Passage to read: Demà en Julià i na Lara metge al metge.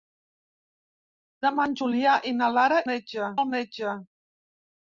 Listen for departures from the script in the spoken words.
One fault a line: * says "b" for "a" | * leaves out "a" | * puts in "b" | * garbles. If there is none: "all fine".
all fine